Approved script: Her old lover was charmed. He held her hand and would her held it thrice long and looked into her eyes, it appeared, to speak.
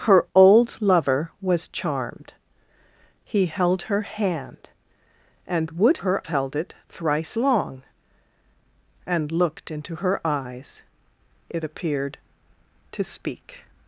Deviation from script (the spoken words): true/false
false